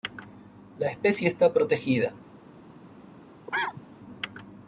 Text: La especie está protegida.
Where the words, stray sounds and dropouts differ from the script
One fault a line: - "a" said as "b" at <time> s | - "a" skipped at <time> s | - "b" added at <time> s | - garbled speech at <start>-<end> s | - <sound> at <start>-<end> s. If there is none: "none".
- cough at 3.5-3.8 s